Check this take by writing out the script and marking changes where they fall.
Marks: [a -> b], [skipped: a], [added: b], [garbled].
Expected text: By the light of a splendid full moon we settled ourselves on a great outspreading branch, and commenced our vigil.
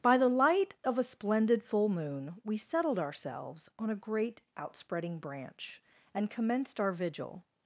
By the light of a splendid full moon we settled ourselves on a great outspreading branch, and commenced our vigil.